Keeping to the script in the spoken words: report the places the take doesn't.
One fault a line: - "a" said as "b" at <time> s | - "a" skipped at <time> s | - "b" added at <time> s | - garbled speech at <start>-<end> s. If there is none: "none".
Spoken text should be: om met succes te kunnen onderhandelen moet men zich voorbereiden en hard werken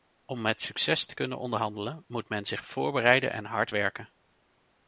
none